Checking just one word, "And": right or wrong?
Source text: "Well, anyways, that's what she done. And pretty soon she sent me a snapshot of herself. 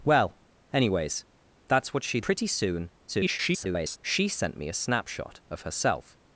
wrong